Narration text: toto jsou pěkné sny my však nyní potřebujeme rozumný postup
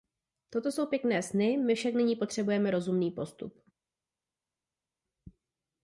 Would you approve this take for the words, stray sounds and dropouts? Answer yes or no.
yes